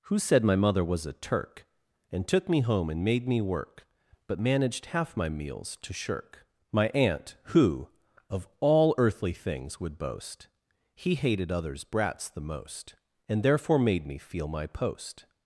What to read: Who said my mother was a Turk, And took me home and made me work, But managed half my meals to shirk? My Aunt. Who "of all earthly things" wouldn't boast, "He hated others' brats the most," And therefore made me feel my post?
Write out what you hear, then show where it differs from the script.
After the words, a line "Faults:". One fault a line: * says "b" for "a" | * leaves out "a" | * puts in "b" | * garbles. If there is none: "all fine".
Who said my mother was a Turk, And took me home and made me work, But managed half my meals to shirk? My Aunt. Who "of all earthly things" would boast, "He hated others' brats the most," And therefore made me feel my post?
Faults:
* says "would" for "wouldn't"